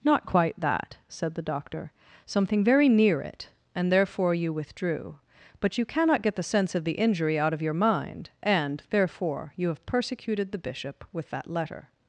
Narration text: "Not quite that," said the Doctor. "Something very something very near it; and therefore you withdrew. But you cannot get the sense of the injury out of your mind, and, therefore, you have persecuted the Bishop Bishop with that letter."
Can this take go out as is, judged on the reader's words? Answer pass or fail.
fail